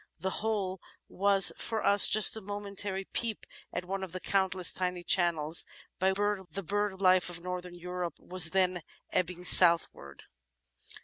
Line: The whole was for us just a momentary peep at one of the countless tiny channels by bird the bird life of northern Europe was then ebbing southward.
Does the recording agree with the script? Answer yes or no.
yes